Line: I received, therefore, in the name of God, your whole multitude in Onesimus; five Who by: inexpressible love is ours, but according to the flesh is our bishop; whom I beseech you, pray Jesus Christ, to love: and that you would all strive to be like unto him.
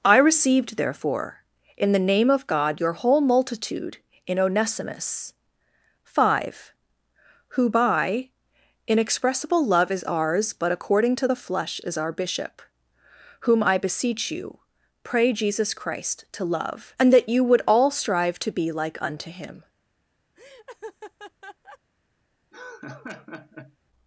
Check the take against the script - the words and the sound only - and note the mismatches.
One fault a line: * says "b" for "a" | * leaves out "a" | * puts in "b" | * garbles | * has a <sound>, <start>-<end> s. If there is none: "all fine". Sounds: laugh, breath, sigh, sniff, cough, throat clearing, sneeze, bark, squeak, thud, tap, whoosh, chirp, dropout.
* has a laugh, 20.4-21.8 s
* has a laugh, 22.5-23.8 s